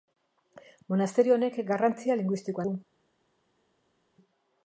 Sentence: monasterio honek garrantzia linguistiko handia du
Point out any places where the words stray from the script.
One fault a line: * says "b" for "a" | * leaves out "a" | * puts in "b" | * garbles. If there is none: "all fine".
* leaves out "handia"